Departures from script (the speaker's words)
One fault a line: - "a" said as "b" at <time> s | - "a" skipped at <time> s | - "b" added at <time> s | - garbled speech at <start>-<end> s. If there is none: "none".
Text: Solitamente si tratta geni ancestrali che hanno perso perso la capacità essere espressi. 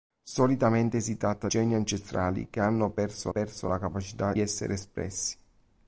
none